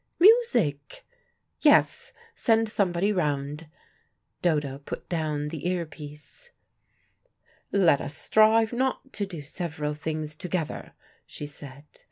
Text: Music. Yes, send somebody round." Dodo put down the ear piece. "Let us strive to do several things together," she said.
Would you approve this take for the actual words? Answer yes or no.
no